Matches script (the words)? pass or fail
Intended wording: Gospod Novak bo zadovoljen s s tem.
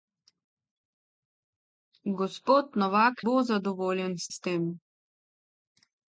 pass